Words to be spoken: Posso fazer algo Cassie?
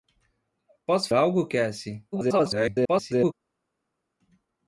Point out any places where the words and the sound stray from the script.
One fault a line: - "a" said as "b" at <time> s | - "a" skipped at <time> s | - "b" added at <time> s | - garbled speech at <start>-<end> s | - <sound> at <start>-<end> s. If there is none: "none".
- "fazer" skipped at 1.1 s
- garbled speech at 2.1-3.3 s